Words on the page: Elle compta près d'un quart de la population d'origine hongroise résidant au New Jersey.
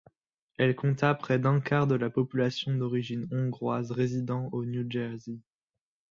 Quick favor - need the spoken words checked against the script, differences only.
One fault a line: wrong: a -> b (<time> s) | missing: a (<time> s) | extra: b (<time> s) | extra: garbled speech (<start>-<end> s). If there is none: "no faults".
no faults